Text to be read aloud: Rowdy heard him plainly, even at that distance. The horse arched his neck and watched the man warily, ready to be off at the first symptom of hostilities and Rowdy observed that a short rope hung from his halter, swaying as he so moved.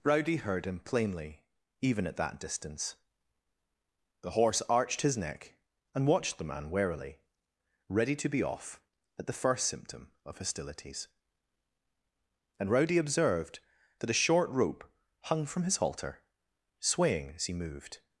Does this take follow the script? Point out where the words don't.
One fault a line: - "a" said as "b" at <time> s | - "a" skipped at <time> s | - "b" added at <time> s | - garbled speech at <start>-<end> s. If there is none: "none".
- "so" skipped at 17.5 s